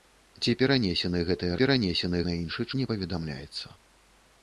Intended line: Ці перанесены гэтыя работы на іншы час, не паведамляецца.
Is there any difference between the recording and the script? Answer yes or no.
yes